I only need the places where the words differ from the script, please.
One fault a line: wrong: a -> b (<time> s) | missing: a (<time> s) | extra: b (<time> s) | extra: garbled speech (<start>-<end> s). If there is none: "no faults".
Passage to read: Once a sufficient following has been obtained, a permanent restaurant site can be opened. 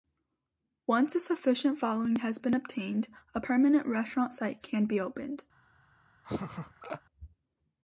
no faults